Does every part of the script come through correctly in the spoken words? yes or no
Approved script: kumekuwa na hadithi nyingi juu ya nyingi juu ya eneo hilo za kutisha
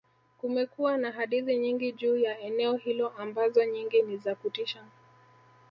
no